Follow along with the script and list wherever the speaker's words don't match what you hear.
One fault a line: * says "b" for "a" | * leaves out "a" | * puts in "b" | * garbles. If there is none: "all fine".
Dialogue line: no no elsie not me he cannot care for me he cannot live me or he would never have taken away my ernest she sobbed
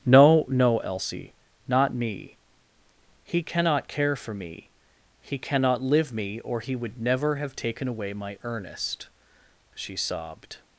all fine